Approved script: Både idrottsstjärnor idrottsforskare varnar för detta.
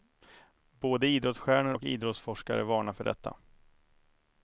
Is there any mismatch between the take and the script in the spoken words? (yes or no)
yes